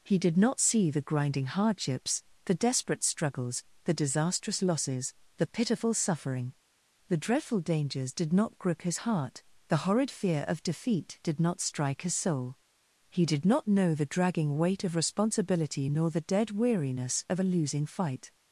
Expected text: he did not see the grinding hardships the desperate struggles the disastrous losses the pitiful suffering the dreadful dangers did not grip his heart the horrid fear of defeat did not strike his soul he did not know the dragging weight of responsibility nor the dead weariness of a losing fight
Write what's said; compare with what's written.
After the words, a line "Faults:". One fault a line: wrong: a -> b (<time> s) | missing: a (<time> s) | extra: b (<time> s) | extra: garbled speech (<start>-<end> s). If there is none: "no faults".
he did not see the grinding hardships the desperate struggles the disastrous losses the pitiful suffering the dreadful dangers did not grip his heart the horrid fear of defeat did not strike his soul he did not know the dragging weight of responsibility nor the dead weariness of a losing fight
Faults:
no faults